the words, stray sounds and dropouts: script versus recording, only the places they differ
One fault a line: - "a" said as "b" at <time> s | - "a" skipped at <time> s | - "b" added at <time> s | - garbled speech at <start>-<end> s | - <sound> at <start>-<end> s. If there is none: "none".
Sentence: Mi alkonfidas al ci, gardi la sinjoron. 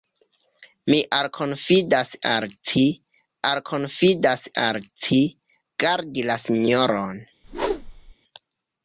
- "alkonfidas al ci" added at 3.5 s
- whoosh at 7.4-8.1 s